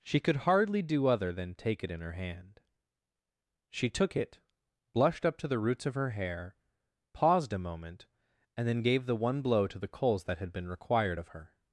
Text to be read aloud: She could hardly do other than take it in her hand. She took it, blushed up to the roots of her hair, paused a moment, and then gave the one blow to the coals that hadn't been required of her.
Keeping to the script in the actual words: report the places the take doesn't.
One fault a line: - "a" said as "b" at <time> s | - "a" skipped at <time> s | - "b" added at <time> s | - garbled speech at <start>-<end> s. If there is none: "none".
- "hadn't" said as "had" at 10.4 s